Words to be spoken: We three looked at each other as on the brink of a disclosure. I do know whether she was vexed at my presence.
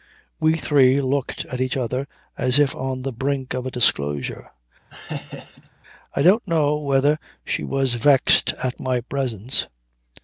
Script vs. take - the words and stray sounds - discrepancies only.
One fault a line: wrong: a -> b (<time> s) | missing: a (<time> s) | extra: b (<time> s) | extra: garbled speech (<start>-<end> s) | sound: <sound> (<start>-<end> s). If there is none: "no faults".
extra: if (2.6 s)
sound: laugh (4.9-5.7 s)
wrong: do -> don't (6.2 s)